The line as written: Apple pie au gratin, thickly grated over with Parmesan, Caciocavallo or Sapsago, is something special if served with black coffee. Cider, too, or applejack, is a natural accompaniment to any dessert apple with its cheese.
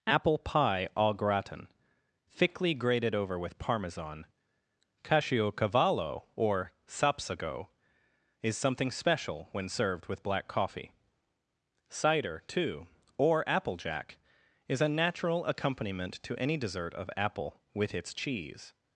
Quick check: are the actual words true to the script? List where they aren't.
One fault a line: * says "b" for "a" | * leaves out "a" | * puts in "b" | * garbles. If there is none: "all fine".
* says "when" for "if"
* puts in "of"